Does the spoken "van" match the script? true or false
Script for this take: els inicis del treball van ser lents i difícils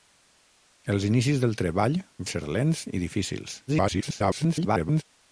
false